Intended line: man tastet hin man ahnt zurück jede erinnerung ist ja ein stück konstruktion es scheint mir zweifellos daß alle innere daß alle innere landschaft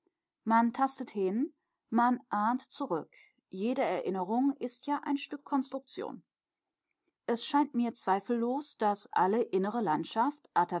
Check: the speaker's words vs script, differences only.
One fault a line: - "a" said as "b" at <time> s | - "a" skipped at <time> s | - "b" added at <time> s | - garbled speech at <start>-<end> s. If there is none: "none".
- "daß alle innere" skipped at 9.8 s